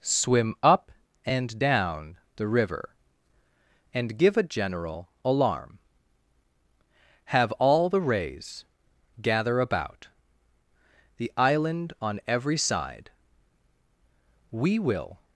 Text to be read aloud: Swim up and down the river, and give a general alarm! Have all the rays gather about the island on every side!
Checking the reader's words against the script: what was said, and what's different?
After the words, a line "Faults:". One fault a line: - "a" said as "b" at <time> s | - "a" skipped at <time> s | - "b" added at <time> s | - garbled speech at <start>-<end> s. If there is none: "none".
Swim up and down the river, and give a general alarm! Have all the rays gather about the island on every side! We will
Faults:
- "We will" added at 14.5 s